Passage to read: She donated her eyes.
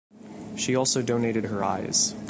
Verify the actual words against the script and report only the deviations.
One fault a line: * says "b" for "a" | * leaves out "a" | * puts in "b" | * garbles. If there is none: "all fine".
* puts in "also"